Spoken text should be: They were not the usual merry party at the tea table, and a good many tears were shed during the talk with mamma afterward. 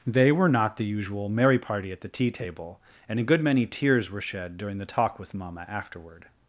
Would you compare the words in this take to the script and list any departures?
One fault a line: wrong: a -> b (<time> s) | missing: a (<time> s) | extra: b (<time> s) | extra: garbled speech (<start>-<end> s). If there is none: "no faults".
no faults